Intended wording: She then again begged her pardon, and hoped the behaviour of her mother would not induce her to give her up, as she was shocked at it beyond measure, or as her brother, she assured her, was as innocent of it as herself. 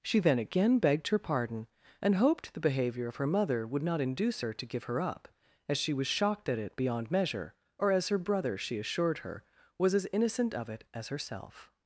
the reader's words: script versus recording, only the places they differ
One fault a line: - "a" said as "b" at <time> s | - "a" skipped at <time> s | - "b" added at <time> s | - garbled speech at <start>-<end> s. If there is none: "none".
none